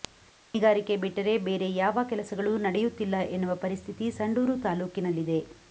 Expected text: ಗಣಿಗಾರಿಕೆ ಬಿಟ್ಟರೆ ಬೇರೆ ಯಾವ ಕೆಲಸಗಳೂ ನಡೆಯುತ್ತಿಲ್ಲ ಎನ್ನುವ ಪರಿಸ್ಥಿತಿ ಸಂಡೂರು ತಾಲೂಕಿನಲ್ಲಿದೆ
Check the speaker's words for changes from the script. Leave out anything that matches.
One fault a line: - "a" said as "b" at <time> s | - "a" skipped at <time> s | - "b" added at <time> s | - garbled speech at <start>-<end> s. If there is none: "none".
none